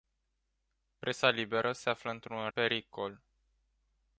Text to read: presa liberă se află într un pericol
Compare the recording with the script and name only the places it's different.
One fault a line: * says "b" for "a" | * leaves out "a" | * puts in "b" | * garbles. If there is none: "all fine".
all fine